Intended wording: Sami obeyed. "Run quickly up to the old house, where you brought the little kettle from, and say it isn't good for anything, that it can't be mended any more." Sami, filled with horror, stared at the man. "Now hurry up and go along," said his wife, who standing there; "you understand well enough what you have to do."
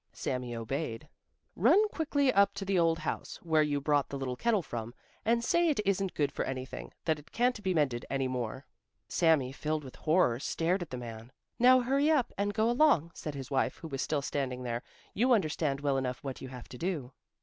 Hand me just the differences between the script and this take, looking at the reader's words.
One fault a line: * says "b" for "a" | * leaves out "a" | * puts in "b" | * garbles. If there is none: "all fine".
* puts in "was still"